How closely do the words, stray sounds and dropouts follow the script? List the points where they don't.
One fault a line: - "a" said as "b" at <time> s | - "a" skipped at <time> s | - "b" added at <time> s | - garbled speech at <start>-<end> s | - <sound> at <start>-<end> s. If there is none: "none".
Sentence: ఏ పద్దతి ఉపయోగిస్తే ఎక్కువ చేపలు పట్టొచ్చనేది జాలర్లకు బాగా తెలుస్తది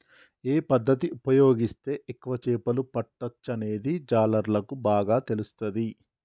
none